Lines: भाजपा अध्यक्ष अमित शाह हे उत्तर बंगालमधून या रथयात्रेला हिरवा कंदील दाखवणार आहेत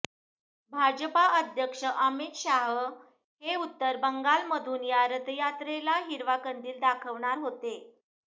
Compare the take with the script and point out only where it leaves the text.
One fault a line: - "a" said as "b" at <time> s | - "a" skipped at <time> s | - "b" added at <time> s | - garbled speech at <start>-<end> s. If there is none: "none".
- "आहेत" said as "होते" at 7.4 s